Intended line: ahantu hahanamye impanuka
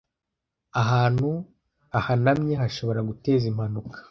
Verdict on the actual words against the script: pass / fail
fail